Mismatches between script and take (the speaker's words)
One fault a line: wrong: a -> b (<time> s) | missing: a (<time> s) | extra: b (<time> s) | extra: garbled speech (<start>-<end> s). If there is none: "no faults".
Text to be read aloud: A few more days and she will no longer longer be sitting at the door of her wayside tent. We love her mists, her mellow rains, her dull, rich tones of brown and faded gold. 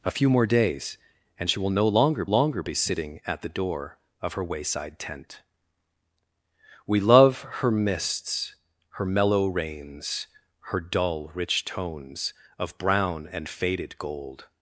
no faults